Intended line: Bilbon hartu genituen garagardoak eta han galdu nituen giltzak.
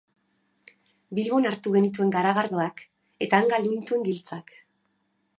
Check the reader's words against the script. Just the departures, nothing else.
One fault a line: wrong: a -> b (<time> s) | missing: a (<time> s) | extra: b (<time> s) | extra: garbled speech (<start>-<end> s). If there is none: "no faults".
no faults